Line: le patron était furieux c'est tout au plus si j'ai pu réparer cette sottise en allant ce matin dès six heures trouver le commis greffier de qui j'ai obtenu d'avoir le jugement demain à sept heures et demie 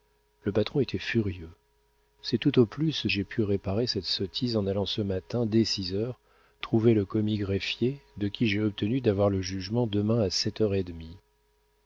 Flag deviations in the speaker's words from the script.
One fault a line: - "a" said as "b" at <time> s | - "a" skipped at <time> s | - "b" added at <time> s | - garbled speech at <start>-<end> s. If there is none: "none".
- "si" skipped at 3.1 s